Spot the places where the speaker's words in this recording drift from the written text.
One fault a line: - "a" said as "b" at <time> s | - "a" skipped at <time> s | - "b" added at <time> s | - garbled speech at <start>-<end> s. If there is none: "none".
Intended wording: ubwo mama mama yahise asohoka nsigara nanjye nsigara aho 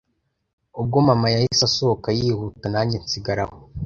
- "mama" skipped at 1.3 s
- "nsigara" said as "yihuta" at 2.2 s